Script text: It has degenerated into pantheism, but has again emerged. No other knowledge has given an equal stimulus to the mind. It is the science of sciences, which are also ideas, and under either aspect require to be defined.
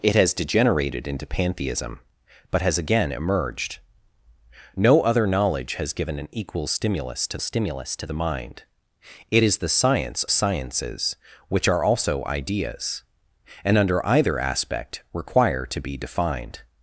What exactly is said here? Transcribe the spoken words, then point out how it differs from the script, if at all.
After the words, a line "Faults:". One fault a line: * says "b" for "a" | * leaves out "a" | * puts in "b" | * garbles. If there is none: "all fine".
It has degenerated into pantheism, but has again emerged. No other knowledge has given an equal stimulus to stimulus to the mind. It is the science sciences, which are also ideas, and under either aspect require to be defined.
Faults:
* puts in "stimulus to"
* leaves out "of"